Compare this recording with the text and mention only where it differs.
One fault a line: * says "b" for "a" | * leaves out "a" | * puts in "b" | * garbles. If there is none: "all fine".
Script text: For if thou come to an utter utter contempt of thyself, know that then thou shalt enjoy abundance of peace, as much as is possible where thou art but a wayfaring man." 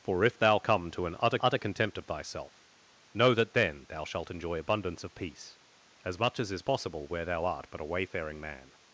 all fine